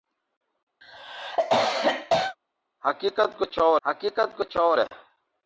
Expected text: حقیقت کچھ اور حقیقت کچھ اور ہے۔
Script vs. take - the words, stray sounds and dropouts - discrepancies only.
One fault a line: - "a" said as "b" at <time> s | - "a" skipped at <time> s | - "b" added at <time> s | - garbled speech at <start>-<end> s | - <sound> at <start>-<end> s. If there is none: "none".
- cough at 0.8-2.4 s